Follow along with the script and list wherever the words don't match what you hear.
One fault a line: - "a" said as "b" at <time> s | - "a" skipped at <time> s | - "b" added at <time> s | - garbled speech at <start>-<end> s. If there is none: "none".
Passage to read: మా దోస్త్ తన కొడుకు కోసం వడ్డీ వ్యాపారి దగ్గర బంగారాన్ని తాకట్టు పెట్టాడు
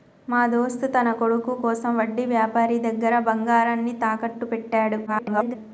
- garbled speech at 5.1-5.6 s